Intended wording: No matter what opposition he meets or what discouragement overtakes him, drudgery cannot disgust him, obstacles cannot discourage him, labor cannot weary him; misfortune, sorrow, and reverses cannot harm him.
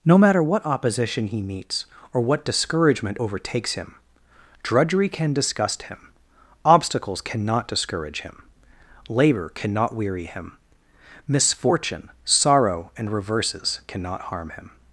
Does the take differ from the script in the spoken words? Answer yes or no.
yes